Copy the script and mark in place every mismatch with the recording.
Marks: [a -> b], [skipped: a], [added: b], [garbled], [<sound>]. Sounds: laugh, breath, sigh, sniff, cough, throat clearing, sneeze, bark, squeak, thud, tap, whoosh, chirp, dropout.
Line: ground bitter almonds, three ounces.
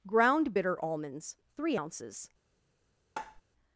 ground bitter almonds, three ounces. [tap]